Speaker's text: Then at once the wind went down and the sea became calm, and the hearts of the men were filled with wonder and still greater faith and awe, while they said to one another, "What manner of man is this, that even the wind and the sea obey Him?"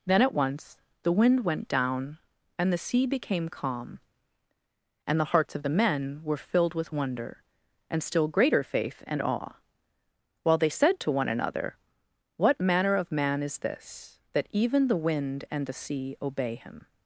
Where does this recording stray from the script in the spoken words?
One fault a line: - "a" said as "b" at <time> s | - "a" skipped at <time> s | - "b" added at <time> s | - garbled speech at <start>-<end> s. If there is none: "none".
none